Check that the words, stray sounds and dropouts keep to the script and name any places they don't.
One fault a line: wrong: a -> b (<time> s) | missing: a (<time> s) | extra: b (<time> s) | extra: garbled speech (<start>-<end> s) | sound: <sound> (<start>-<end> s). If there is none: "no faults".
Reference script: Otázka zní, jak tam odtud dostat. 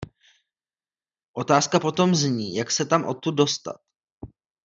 extra: potom (1.8 s)
extra: se (2.7 s)